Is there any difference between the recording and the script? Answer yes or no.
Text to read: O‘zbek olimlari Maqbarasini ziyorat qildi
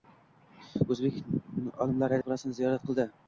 no